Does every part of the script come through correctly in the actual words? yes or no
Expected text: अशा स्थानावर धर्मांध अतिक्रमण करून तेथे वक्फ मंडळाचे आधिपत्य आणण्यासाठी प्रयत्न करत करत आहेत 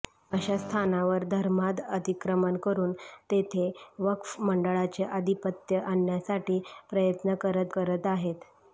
yes